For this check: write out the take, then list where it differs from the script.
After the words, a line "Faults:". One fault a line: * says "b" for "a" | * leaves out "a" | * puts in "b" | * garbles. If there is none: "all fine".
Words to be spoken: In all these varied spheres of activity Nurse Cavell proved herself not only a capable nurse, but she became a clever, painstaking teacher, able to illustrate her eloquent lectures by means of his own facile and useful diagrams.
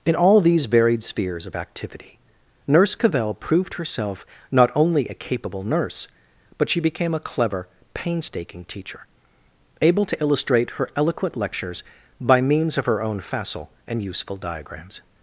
In all these varied spheres of activity Nurse Cavell proved herself not only a capable nurse, but she became a clever, painstaking teacher, able to illustrate her eloquent lectures by means of her own facile and useful diagrams.
Faults:
* says "her" for "his"